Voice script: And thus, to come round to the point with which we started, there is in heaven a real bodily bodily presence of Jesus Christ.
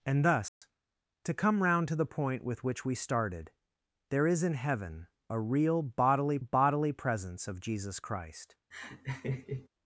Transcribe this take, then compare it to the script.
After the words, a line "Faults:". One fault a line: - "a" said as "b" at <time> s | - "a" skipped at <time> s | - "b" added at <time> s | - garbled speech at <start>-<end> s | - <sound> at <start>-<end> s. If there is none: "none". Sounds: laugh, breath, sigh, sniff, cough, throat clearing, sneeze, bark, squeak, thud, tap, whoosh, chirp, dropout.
And thus, to come round to the point with which we started, there is in heaven a real bodily bodily presence of Jesus Christ.
Faults:
- dropout at 0.5-0.6 s
- laugh at 8.7-9.7 s